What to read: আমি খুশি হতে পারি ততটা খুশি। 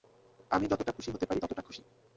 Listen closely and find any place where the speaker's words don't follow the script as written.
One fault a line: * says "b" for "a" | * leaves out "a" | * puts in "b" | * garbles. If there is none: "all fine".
* puts in "যতটা"